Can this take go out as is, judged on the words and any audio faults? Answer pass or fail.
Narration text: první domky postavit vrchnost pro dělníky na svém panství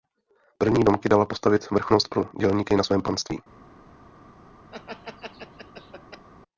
fail